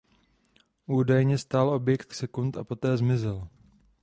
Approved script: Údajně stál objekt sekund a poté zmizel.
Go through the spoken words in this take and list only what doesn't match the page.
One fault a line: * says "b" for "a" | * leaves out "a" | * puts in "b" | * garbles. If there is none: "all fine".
all fine